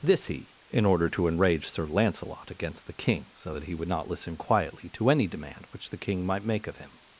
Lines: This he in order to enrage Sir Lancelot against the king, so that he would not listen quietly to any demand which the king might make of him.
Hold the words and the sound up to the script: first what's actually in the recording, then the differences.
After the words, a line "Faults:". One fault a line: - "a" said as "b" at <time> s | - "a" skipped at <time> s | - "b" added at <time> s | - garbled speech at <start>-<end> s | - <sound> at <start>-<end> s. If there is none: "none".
This he in order to enrage Sir Lancelot against the king, so that he would not listen quietly to any demand which the king might make of him.
Faults:
none